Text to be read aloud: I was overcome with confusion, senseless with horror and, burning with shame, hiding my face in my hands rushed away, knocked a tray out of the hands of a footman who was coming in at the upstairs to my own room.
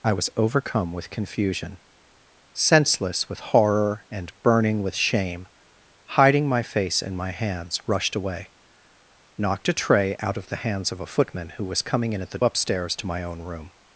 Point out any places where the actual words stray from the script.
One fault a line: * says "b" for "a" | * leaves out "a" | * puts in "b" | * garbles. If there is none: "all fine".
all fine